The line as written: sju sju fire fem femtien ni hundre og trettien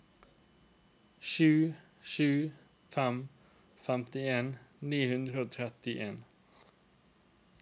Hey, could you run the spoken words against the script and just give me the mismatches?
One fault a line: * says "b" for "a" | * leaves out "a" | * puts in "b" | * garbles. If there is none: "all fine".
* leaves out "fire"